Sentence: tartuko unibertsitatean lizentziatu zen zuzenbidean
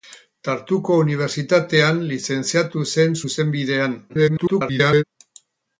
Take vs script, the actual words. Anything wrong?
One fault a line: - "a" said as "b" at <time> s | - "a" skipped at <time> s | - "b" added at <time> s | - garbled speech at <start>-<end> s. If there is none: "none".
- garbled speech at 4.1-5.0 s